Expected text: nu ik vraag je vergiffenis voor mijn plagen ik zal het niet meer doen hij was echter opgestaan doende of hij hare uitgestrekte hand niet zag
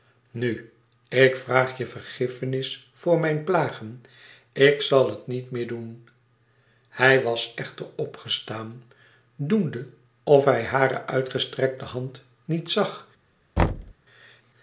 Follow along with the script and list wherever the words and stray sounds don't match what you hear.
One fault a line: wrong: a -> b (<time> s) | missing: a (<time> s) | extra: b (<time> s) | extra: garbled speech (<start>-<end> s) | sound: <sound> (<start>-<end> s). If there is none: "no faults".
sound: thud (13.6-13.9 s)